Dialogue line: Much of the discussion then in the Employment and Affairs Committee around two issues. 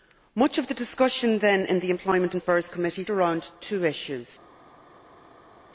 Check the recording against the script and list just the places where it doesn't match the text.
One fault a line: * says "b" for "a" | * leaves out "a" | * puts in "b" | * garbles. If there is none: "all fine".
all fine